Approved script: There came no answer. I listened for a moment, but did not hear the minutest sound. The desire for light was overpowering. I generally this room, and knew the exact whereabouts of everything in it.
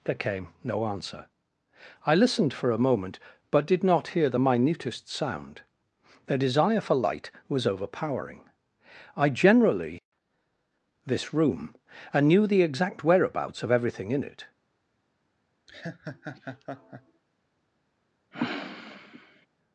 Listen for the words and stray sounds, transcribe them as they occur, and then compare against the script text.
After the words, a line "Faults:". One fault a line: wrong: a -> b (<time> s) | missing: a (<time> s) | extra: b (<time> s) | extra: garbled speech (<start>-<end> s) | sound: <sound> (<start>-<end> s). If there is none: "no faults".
There came no answer. I listened for a moment, but did not hear the minutest sound. The desire for light was overpowering. I generally this room, and knew the exact whereabouts of everything in it.
Faults:
sound: laugh (15.7-17.2 s)
sound: sniff (18.3-19.5 s)